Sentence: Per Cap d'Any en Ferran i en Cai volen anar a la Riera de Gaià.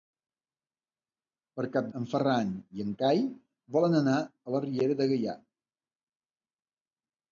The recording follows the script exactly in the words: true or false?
false